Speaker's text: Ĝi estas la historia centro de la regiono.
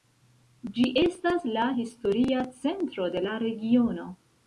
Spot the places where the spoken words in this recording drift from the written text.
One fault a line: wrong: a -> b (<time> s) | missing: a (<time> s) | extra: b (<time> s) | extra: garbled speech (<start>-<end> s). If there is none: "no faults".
no faults